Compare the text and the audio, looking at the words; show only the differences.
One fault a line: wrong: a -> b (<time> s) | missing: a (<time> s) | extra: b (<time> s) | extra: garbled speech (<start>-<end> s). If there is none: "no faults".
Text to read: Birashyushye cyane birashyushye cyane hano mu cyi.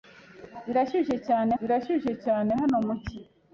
no faults